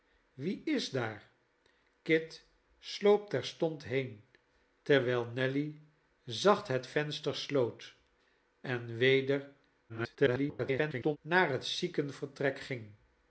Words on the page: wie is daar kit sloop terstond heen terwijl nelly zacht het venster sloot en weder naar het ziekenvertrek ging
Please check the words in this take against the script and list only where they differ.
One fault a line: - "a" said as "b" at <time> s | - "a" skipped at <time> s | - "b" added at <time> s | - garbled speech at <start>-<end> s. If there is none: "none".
- garbled speech at 9.9-11.2 s